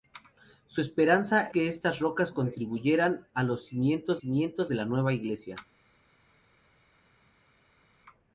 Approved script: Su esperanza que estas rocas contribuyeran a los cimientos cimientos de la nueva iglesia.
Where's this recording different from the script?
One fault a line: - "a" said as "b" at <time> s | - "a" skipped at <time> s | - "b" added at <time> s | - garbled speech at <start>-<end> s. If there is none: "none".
none